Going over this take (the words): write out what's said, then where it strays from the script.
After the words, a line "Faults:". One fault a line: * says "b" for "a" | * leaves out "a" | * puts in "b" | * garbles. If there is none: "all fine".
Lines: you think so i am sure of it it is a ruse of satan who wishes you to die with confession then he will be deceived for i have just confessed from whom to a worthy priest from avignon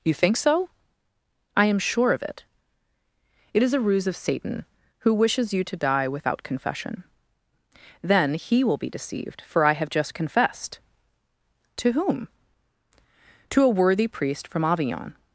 you think so i am sure of it it is a ruse of satan who wishes you to die without confession then he will be deceived for i have just confessed to whom to a worthy priest from avignon
Faults:
* says "without" for "with"
* says "to" for "from"